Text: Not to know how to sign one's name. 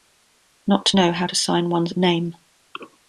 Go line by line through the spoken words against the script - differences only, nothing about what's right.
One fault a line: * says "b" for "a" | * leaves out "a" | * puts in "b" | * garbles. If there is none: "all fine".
all fine